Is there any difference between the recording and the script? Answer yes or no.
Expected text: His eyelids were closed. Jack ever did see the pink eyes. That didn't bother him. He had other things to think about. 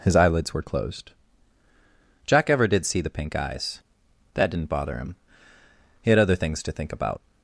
no